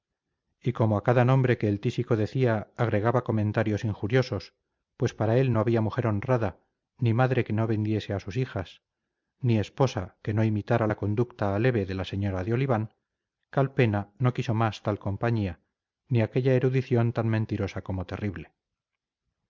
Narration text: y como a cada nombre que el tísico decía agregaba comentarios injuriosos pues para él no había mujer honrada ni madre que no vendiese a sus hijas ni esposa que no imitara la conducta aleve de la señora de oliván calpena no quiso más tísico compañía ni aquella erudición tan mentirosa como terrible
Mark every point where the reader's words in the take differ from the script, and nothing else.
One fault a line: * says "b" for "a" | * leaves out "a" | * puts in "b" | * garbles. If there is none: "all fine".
* says "tal" for "tísico"